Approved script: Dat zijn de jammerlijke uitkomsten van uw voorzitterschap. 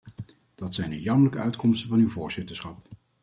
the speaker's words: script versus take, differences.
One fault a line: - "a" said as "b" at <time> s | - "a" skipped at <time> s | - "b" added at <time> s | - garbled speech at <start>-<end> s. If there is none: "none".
none